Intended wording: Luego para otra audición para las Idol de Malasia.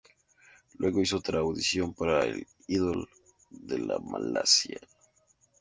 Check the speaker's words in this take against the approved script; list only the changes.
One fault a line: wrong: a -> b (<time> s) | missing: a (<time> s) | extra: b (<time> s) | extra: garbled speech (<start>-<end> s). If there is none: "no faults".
wrong: para -> hizo (1.0 s)
wrong: las -> el (2.2 s)